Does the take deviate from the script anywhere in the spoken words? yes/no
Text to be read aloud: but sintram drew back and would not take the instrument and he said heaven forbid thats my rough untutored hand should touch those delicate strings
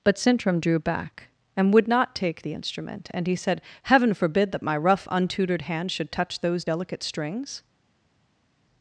yes